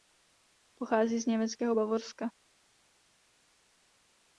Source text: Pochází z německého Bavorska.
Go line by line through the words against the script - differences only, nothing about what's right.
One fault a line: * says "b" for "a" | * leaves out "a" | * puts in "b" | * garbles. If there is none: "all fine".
all fine